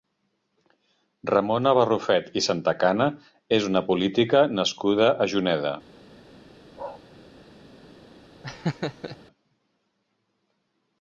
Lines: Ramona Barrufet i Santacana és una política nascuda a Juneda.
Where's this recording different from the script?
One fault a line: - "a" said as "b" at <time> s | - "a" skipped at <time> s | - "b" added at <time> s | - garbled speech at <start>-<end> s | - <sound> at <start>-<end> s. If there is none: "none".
- bark at 6.7-7.0 s
- laugh at 8.4-9.2 s